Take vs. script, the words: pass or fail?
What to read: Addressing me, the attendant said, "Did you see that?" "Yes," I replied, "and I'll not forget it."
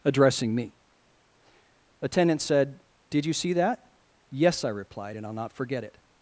fail